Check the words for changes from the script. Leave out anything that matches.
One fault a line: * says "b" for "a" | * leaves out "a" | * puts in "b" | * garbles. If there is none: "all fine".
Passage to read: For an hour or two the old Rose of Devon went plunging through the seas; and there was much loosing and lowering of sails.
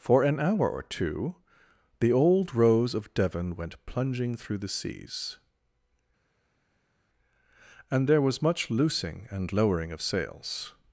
all fine